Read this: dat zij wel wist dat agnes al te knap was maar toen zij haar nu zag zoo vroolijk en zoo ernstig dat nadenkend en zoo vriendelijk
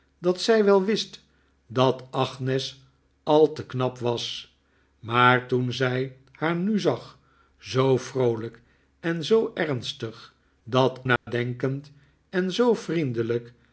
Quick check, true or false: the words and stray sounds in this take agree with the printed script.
false